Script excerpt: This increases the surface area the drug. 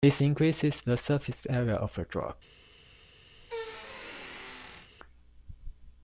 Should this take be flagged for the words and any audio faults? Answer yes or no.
yes